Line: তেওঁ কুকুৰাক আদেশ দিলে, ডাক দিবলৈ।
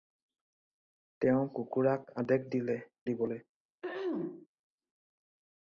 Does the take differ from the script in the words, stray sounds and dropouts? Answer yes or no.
yes